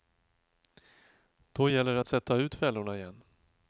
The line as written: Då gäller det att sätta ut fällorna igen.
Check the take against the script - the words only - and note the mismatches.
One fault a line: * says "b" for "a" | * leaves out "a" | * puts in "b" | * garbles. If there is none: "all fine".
all fine